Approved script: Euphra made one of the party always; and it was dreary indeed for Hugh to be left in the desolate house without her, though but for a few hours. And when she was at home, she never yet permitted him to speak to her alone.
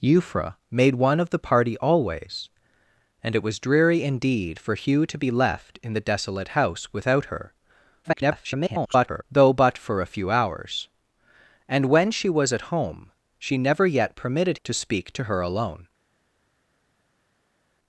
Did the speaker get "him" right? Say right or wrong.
wrong